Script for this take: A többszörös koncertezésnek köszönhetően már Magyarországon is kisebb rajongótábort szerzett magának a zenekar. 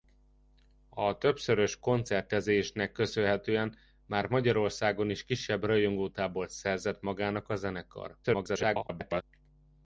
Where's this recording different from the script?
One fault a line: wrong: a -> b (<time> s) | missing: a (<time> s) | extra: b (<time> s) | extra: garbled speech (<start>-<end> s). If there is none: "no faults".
extra: garbled speech (8.2-9.2 s)